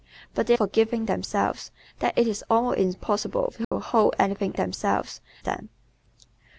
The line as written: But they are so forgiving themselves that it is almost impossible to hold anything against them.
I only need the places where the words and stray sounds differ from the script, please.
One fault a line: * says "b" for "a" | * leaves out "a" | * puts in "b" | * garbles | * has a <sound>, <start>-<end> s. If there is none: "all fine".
* leaves out "are so"
* has a dropout, 3.6-3.7 s
* says "themselves" for "against"